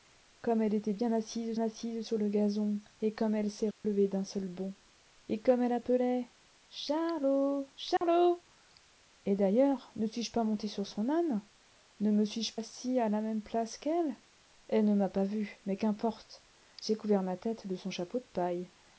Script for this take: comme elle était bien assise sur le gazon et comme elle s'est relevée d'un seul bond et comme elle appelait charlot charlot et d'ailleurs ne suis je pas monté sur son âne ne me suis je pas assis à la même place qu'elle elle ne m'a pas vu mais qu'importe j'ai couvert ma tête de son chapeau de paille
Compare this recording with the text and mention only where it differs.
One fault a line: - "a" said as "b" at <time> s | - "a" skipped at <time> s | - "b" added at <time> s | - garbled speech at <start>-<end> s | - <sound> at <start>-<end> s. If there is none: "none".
- "assise" added at 1.6 s
- dropout at 3.7-3.8 s
- dropout at 8.0-8.0 s
- "pas" skipped at 12.6 s